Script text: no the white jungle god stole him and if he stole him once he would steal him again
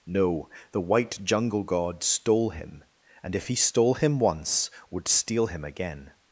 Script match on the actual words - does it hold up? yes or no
no